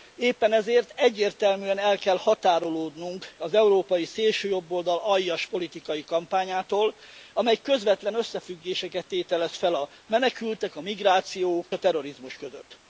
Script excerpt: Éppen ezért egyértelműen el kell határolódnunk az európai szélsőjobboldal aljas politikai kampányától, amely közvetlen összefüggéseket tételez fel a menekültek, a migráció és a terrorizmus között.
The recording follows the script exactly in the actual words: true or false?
false